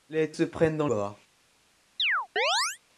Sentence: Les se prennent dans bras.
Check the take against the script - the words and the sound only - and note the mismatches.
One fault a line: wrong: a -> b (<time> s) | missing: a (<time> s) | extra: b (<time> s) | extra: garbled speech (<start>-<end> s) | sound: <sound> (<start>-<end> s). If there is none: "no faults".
sound: chirp (2.0-2.8 s)